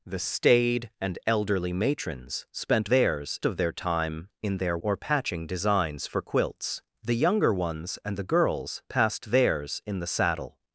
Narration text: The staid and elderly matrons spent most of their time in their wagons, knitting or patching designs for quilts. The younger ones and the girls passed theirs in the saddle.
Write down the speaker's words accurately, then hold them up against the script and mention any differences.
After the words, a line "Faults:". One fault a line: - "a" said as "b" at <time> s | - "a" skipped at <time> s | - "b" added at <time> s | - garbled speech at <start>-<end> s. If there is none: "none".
The staid and elderly matrons spent theirs of their time in their or patching designs for quilts. The younger ones and the girls passed theirs in the saddle.
Faults:
- "most" said as "theirs" at 2.9 s
- "wagons knitting" skipped at 4.8 s